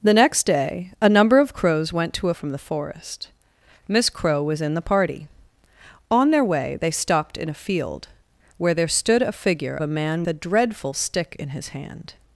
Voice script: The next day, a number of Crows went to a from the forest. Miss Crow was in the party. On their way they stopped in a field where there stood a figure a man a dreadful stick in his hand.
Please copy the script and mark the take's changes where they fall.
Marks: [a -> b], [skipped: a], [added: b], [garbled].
The next day, a number of Crows went to a from the forest. Miss Crow was in the party. On their way they stopped in a field where there stood a figure a man a dreadful stick in his hand.